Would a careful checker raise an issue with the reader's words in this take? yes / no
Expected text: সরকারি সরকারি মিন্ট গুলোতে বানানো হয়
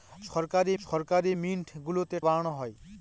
no